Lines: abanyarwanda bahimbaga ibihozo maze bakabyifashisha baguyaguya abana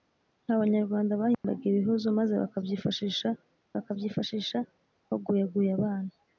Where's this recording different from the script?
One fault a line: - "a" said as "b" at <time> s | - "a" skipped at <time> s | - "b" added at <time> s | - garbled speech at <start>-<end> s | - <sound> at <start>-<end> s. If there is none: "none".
- dropout at 1.3-1.4 s
- "bakabyifashisha" added at 3.8 s